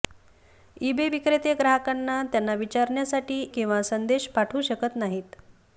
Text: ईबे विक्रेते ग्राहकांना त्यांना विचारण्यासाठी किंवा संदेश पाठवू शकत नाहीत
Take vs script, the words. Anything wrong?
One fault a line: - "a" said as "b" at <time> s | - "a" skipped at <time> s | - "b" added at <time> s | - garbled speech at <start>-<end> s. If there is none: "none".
none